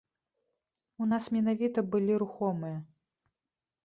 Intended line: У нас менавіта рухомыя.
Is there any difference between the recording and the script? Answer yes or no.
yes